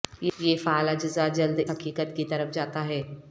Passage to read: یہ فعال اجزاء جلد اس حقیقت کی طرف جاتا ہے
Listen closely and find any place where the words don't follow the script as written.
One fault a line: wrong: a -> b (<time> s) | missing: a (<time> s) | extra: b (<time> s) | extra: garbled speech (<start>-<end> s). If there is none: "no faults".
missing: اس (1.6 s)